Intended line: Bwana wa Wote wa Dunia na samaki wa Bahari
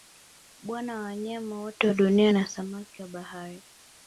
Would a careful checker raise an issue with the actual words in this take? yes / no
yes